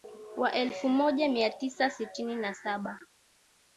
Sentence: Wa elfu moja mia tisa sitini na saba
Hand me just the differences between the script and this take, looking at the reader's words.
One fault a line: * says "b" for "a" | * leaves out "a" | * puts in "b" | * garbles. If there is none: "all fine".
all fine